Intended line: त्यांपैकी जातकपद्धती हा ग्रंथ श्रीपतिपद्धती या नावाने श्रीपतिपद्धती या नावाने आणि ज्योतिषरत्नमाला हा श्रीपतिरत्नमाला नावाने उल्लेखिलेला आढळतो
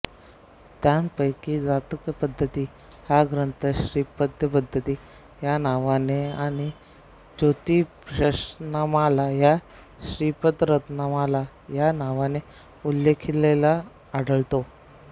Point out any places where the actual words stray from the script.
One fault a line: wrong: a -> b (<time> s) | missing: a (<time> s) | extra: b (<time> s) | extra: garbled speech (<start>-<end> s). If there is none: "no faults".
missing: श्रीपतिपद्धती या नावाने (6.2 s)
extra: या (11.8 s)